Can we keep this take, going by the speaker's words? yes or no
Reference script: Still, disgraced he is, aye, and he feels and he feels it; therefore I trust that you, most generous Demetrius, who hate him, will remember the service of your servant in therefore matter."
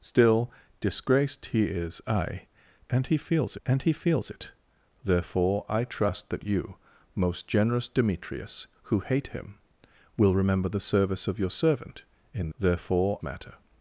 yes